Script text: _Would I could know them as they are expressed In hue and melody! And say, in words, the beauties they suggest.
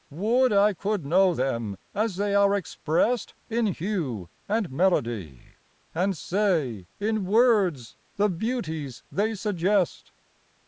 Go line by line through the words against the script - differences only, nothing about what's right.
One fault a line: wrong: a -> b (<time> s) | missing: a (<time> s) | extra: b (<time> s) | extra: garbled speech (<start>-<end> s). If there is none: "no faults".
no faults